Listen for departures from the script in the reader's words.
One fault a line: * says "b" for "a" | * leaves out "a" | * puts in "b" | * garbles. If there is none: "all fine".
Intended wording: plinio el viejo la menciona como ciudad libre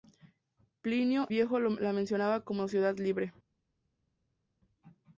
* leaves out "el"